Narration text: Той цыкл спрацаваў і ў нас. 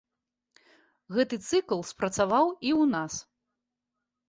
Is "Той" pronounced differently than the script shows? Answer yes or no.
yes